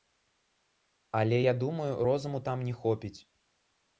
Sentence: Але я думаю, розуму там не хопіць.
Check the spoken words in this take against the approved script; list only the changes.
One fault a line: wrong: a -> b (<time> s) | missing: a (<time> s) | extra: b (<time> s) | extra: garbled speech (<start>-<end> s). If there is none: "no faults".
no faults